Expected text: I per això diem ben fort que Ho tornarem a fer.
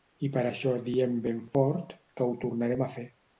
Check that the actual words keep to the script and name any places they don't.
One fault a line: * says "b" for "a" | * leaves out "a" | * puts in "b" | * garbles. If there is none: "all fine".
all fine